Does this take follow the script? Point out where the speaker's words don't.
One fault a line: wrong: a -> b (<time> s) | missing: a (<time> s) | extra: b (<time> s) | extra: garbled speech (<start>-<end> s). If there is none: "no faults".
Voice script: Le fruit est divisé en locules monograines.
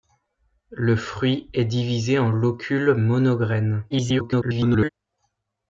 extra: garbled speech (3.9-4.9 s)